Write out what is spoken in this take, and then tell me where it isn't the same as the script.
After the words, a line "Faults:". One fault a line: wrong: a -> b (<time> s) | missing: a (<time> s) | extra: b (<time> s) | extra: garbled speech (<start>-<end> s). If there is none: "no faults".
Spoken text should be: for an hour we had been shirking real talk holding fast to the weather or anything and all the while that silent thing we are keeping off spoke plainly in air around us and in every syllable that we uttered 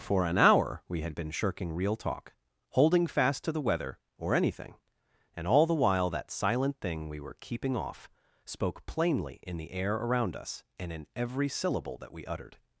for an hour we had been shirking real talk holding fast to the weather or anything and all the while that silent thing we were keeping off spoke plainly in the air around us and in every syllable that we uttered
Faults:
wrong: are -> were (7.2 s)
extra: the (9.6 s)